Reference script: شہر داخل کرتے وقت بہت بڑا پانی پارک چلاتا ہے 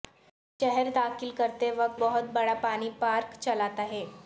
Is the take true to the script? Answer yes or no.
yes